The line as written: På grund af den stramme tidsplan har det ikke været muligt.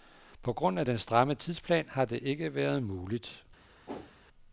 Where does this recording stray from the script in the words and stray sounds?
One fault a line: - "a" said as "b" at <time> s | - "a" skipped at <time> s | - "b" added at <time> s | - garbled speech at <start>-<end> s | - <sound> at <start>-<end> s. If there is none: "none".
- whoosh at 3.9-4.2 s